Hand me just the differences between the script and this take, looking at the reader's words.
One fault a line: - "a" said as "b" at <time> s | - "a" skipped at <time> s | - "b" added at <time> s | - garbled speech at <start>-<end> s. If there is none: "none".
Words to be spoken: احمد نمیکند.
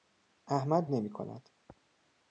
none